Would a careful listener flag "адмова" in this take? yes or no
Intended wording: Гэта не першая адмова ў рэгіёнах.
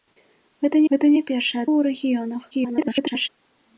yes